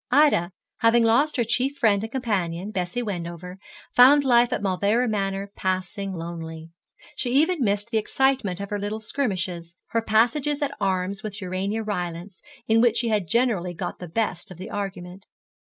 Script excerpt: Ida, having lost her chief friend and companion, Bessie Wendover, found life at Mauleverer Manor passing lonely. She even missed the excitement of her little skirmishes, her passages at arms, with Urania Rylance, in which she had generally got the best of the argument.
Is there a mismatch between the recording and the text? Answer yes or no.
no